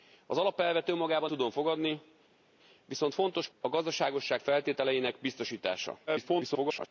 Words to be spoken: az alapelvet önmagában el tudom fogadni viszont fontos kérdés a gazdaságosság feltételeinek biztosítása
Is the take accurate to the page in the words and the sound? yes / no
no